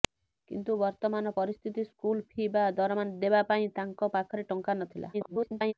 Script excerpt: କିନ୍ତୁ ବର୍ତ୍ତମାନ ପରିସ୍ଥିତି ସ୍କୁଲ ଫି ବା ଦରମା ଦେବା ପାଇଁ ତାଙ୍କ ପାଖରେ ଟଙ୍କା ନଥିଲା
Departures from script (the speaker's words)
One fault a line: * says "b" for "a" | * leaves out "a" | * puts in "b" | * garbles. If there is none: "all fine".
* garbles